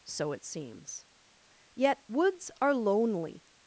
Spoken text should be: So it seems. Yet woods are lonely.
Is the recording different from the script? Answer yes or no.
no